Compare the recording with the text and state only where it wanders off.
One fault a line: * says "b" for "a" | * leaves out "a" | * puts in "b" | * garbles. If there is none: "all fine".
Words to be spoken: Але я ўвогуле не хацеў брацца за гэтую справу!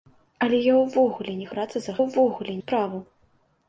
* leaves out "хацеў"
* says "ўвогуле" for "гэтую"